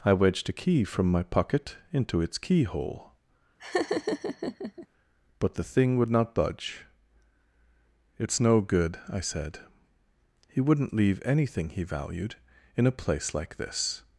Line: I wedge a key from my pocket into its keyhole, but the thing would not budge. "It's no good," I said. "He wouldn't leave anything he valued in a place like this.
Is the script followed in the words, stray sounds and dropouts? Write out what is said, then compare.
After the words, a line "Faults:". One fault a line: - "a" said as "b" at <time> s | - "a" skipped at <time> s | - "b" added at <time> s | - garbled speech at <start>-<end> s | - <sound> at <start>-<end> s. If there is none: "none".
I wedged a key from my pocket into its keyhole, but the thing would not budge. "It's no good," I said. "He wouldn't leave anything he valued in a place like this.
Faults:
- "wedge" said as "wedged" at 0.1 s
- laugh at 3.6-4.9 s